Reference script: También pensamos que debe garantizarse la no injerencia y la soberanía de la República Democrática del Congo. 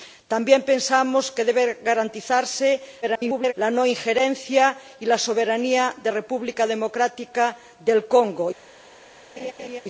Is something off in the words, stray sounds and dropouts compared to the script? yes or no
yes